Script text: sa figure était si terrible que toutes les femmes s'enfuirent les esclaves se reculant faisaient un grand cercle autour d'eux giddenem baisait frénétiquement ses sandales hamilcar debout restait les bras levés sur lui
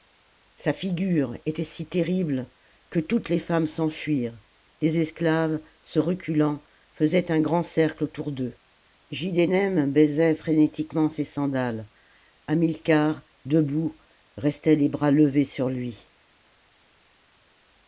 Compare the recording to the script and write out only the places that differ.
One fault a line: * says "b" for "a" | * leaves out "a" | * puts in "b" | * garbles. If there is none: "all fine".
all fine